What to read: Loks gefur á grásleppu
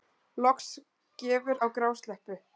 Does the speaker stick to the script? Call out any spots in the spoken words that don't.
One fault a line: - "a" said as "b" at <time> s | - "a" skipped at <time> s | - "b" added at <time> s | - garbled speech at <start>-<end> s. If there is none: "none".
none